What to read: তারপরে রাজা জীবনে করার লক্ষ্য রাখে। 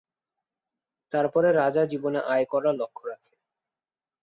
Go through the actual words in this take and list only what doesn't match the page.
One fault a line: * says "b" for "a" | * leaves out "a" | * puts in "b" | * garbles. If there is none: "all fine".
* puts in "আয়"